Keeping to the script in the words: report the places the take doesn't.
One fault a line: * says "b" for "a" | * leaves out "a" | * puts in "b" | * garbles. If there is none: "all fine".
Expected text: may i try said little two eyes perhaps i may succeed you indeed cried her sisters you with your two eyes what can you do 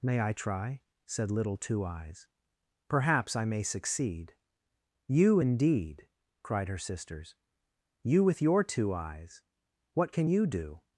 all fine